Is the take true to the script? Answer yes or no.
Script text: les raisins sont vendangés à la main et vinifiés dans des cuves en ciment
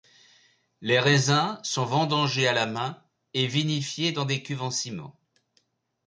yes